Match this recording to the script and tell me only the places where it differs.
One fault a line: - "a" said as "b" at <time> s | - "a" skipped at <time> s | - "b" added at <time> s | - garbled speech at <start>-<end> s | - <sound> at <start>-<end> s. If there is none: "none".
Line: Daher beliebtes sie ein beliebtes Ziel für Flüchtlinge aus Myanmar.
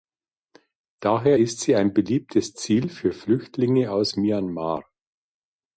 - "beliebtes" said as "ist" at 1.4 s